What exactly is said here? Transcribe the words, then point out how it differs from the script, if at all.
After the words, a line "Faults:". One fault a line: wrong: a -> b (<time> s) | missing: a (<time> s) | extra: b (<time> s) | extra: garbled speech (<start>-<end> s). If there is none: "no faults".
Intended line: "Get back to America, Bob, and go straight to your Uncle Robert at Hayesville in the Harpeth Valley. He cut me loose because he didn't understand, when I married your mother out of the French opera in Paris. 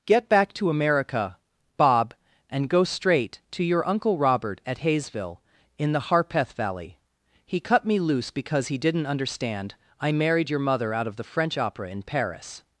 "Get back to America, Bob, and go straight to your Uncle Robert at Hayesville in the Harpeth Valley. He cut me loose because he didn't understand, I married your mother out of the French opera in Paris.
Faults:
missing: when (9.8 s)